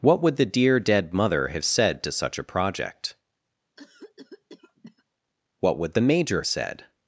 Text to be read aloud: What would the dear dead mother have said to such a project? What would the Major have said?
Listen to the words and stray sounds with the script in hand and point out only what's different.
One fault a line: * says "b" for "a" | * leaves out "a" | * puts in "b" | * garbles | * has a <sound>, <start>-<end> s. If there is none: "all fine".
* has a cough, 3.8-5.0 s
* leaves out "have"